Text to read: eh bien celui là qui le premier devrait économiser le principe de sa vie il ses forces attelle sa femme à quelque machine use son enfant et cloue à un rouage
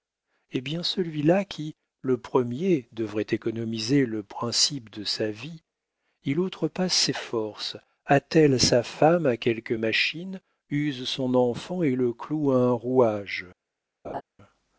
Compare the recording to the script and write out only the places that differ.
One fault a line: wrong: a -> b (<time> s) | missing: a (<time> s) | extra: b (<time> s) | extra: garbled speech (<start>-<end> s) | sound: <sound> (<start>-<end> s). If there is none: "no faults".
extra: outrepasse (6.4 s)
extra: le (12.0 s)
sound: laugh (14.0-14.2 s)